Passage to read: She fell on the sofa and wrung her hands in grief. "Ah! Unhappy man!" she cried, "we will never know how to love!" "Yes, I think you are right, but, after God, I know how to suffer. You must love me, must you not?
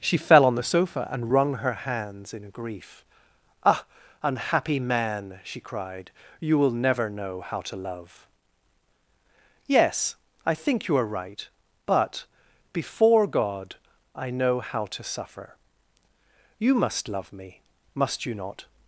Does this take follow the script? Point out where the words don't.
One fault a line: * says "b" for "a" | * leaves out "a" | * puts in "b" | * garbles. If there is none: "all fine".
* says "you" for "we"
* says "before" for "after"